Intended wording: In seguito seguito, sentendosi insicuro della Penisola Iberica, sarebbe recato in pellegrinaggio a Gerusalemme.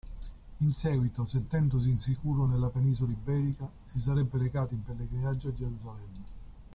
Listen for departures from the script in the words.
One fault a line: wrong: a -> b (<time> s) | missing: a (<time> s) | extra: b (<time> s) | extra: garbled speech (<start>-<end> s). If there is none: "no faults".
missing: seguito (1.2 s)
wrong: della -> nella (2.5 s)
extra: si (3.8 s)